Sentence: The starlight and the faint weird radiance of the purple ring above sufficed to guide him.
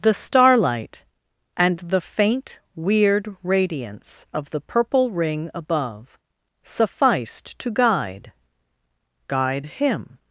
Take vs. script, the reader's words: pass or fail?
fail